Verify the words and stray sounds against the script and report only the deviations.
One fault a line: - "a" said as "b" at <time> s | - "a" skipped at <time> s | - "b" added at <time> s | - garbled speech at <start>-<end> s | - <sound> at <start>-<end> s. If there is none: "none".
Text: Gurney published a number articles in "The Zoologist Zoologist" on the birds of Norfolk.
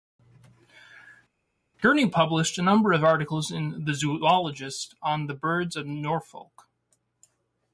- "of" added at 2.9 s
- "Zoologist" skipped at 4.9 s